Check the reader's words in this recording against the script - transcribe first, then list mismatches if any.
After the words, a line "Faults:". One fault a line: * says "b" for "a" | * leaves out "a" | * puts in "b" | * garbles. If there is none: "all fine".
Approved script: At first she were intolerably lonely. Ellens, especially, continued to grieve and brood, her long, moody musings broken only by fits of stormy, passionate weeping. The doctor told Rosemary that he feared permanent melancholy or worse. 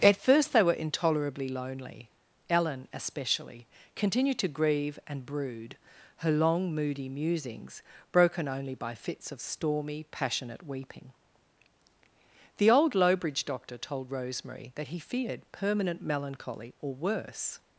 At first they were intolerably lonely. Ellen, especially, continued to grieve and brood, her long, moody musings broken only by fits of stormy, passionate weeping. The old Lowbridge doctor told Rosemary that he feared permanent melancholy or worse.
Faults:
* says "they" for "she"
* says "Ellen" for "Ellens"
* puts in "old Lowbridge"